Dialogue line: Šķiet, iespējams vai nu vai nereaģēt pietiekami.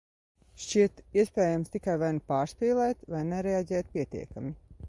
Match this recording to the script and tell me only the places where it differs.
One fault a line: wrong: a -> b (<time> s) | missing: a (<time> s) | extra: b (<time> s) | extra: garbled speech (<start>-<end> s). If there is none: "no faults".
extra: tikai (1.8 s)
extra: pārspīlēt (2.3 s)